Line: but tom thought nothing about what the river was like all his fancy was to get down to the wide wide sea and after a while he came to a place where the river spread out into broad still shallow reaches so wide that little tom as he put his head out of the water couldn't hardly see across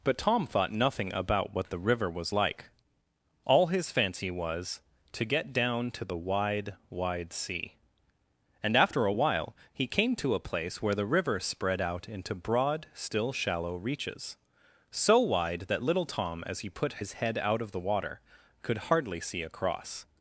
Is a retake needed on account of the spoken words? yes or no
yes